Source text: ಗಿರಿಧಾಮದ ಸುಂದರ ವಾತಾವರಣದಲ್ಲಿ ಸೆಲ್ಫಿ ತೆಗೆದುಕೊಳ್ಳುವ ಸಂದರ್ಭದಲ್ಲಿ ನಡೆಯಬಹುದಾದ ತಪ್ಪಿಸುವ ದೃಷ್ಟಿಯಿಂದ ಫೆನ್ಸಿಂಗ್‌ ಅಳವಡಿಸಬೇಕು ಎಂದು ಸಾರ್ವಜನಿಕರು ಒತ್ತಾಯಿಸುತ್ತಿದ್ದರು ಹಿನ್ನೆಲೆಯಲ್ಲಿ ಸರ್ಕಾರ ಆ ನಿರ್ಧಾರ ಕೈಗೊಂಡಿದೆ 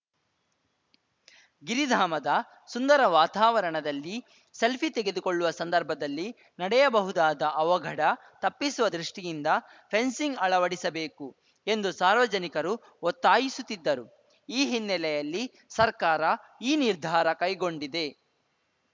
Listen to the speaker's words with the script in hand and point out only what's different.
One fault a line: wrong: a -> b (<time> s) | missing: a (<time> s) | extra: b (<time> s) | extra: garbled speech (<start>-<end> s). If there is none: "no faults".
extra: ಅವಘಡ (7.5 s)
extra: ಈ (14.5 s)
wrong: ಆ -> ಈ (16.6 s)